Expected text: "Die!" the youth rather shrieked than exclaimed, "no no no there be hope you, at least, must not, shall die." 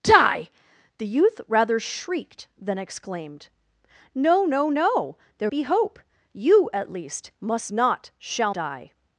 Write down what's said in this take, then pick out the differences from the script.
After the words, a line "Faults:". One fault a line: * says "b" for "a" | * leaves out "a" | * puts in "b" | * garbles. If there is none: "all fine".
"Die!" the youth rather shrieked than exclaimed, "no no no there be hope you, at least, must not, shall die."
Faults:
all fine